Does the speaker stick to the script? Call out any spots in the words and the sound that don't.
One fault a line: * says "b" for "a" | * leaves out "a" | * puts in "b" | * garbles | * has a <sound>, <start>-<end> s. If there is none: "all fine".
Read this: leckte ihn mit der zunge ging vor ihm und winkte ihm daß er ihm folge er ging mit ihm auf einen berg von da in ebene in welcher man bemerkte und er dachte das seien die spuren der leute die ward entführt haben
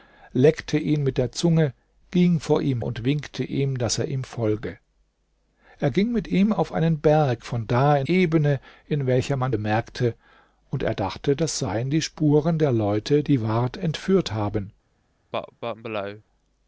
* has a cough, 15.3-16.2 s